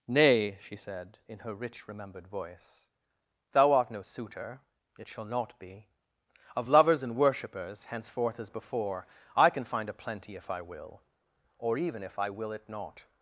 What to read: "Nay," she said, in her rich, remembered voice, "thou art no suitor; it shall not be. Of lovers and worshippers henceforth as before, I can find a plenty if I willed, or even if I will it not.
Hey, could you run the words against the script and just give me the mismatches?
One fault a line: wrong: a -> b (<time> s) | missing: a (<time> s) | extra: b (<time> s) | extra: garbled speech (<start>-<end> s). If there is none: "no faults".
wrong: willed -> will (10.6 s)